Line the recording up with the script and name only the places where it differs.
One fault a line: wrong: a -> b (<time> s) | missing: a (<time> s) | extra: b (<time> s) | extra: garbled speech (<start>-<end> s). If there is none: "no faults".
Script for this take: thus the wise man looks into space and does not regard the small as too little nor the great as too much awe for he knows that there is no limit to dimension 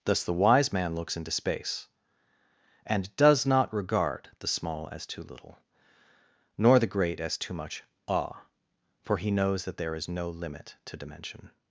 no faults